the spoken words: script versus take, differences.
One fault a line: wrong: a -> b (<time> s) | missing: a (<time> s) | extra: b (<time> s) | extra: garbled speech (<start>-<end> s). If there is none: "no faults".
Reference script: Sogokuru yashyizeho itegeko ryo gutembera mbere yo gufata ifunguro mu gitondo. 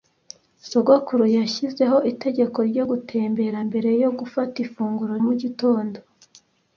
no faults